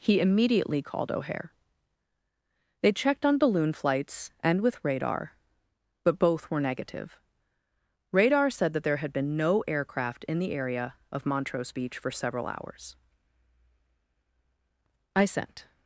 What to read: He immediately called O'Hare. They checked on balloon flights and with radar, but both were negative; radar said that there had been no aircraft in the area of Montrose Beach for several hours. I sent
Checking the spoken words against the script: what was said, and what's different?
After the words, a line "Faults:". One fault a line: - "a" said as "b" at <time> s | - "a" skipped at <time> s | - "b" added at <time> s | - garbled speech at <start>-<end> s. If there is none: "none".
He immediately called O'Hare. They checked on balloon flights and with radar, but both were negative; radar said that there had been no aircraft in the area of Montrose Beach for several hours. I sent
Faults:
none